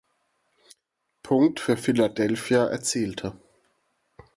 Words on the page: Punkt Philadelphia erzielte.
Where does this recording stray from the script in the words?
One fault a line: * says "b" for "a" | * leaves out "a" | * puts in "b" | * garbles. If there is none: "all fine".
* puts in "für"